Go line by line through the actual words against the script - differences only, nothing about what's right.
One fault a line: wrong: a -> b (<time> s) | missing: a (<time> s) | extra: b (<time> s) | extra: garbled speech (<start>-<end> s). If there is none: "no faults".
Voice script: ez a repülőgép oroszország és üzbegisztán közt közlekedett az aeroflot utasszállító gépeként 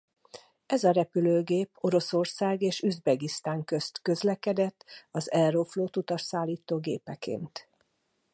no faults